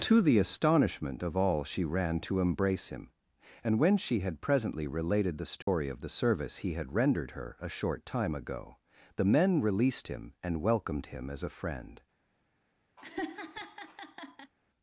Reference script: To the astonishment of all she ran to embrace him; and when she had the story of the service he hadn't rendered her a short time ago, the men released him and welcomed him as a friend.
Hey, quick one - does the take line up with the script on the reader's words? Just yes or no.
no